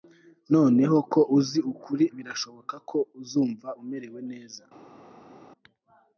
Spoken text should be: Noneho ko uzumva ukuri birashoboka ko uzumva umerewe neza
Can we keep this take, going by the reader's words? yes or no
no